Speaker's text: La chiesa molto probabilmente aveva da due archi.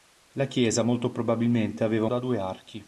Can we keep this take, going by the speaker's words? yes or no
yes